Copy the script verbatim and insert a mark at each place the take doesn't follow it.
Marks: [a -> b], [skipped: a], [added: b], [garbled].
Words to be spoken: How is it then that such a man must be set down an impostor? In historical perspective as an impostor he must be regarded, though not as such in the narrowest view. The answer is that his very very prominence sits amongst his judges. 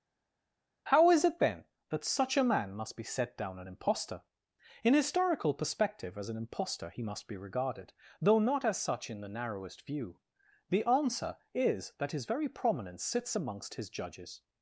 How is it then that such a man must be set down an impostor? In historical perspective as an impostor he must be regarded, though not as such in the narrowest view. The answer is that his very [skipped: very] prominence sits amongst his judges.